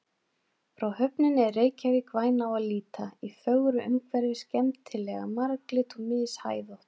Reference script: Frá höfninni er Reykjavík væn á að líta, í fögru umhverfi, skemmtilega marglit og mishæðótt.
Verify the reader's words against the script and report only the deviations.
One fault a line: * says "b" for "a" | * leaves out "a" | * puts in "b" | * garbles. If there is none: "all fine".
all fine